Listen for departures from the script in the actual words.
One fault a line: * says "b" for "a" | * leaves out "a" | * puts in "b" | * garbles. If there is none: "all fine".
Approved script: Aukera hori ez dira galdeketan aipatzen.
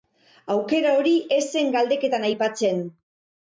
* says "zen" for "dira"